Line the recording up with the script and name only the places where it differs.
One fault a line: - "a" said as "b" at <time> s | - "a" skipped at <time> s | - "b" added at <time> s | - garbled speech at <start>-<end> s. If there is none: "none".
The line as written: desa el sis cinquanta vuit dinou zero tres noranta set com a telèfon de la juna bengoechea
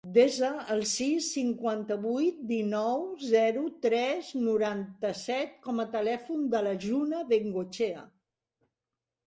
none